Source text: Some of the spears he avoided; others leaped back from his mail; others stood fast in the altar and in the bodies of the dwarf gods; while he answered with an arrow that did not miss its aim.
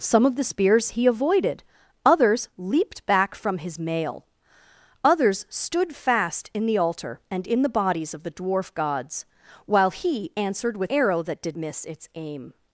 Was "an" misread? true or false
true